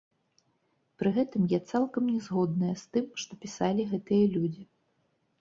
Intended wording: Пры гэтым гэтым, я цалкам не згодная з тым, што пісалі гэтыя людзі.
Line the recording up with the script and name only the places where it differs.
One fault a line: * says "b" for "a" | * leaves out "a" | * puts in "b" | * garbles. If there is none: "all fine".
* leaves out "гэтым"